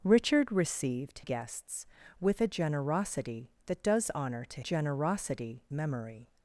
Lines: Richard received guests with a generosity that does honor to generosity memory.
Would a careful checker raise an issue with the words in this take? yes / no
no